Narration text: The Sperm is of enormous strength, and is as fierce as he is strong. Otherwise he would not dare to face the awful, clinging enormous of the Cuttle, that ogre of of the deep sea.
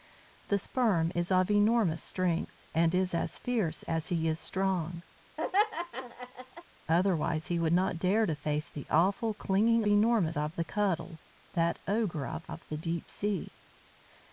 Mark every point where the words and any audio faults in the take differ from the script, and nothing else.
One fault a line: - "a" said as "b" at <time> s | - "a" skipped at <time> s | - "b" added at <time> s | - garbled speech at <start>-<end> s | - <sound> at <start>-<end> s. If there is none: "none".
- laugh at 5.4-6.6 s